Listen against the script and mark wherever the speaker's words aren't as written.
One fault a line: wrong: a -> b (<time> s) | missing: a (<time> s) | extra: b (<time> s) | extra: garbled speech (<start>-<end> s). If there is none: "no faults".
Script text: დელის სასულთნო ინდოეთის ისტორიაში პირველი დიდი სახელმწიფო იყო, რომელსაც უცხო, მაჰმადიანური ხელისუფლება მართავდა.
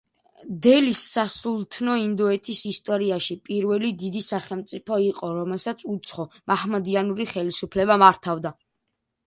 no faults